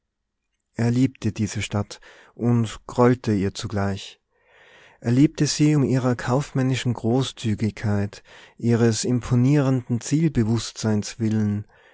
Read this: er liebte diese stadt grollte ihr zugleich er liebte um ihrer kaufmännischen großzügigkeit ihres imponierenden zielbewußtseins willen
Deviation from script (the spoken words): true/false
true